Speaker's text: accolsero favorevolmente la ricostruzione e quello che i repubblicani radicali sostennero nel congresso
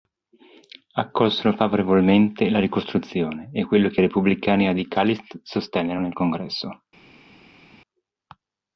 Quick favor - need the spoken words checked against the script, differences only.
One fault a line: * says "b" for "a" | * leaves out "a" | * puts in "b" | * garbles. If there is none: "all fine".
all fine